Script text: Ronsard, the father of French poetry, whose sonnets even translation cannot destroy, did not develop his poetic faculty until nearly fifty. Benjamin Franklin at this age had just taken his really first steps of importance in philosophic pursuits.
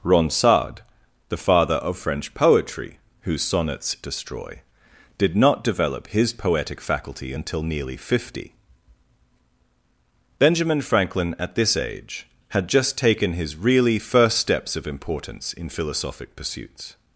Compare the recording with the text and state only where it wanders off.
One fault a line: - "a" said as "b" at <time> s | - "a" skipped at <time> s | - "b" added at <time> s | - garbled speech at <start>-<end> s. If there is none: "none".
- "even translation cannot" skipped at 4.0 s